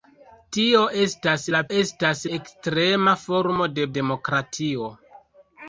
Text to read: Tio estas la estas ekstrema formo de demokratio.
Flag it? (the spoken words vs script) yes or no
no